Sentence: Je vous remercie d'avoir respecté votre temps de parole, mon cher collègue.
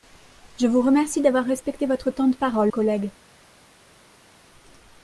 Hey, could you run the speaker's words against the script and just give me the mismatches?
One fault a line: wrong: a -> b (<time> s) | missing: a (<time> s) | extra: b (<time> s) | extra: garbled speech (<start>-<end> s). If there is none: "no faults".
missing: mon cher (2.7 s)